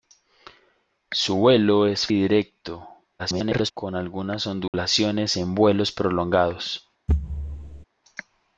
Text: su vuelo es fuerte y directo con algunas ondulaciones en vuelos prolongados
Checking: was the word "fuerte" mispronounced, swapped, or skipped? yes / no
yes